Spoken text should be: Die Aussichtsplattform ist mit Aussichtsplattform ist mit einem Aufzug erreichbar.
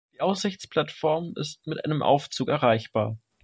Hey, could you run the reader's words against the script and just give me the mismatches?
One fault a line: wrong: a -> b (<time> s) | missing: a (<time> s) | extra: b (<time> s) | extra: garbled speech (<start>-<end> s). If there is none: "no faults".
missing: Aussichtsplattform ist mit (1.8 s)